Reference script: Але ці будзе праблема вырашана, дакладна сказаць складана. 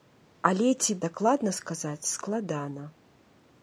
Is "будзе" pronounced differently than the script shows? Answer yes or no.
yes